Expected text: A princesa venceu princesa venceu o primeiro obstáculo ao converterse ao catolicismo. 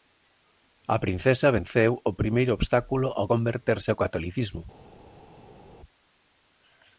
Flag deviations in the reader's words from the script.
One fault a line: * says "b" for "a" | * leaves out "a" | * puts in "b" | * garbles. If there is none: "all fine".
* leaves out "princesa venceu"